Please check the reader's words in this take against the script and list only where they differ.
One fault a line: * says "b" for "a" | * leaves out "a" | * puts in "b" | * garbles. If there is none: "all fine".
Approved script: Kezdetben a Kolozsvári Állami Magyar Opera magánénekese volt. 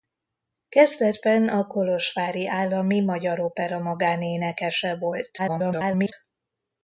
* garbles